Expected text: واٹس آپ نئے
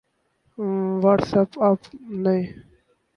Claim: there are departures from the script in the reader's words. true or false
true